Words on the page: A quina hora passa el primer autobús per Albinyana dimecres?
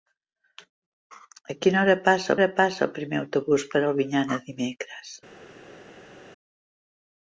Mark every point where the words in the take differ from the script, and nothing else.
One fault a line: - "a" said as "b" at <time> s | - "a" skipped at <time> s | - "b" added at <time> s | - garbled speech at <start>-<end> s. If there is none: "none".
- "hora passa" added at 2.4 s